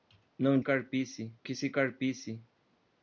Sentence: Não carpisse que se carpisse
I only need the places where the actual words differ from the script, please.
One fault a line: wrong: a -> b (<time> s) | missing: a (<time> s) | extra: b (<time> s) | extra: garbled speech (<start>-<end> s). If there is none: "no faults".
no faults